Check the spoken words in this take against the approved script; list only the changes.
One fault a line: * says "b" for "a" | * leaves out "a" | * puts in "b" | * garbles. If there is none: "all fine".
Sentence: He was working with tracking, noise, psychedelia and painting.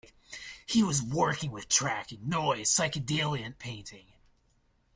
all fine